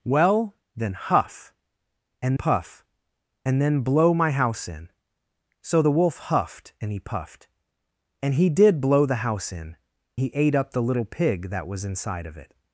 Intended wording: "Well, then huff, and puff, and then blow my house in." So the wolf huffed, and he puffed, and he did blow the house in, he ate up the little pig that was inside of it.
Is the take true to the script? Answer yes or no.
yes